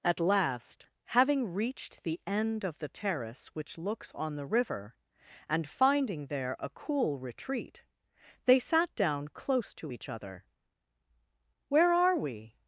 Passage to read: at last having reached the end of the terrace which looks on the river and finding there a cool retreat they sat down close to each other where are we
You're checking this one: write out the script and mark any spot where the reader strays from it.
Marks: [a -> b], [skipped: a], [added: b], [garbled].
at last having reached the end of the terrace which looks on the river and finding there a cool retreat they sat down close to each other where are we